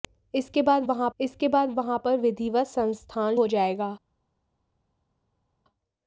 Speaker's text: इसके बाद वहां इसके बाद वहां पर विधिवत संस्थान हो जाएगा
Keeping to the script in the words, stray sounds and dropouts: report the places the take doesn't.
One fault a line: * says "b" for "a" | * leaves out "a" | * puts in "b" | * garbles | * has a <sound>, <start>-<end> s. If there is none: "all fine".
all fine